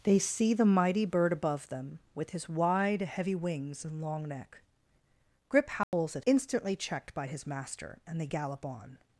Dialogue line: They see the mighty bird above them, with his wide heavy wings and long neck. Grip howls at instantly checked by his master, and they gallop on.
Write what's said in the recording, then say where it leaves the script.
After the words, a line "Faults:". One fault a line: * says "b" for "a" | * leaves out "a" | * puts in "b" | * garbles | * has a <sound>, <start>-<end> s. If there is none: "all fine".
They see the mighty bird above them, with his wide heavy wings and long neck. Grip howls at instantly checked by his master, and they gallop on.
Faults:
* has a dropout, 5.8-5.9 s